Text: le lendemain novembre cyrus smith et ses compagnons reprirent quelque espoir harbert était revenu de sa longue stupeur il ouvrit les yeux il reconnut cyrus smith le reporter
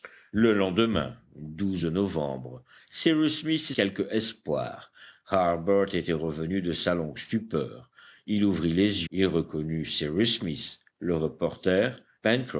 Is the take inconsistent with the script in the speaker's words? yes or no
yes